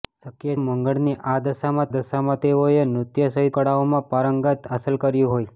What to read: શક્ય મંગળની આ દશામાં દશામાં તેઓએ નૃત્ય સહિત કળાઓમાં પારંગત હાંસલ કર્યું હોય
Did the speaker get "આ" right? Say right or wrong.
right